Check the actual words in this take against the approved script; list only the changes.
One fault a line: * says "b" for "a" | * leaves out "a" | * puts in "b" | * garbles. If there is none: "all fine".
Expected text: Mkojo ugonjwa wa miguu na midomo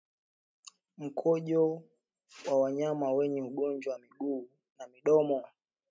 * puts in "wa wanyama wenye"